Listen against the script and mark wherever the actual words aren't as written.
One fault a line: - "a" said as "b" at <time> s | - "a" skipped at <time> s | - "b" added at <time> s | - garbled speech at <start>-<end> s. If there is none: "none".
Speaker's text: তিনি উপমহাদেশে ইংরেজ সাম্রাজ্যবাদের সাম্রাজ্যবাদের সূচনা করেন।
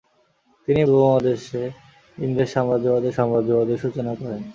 none